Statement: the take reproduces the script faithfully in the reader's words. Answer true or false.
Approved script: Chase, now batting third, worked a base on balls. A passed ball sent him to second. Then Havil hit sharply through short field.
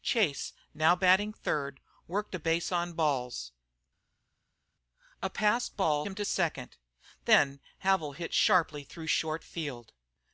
false